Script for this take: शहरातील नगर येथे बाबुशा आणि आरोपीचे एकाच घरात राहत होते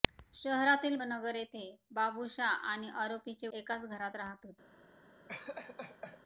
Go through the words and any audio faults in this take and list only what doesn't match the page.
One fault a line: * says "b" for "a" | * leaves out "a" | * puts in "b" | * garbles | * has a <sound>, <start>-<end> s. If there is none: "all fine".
* has a laugh, 5.3-6.2 s